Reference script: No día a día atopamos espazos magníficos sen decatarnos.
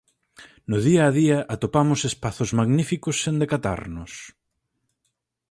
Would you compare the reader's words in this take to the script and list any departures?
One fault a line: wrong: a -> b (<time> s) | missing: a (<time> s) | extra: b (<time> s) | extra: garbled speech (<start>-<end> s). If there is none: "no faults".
no faults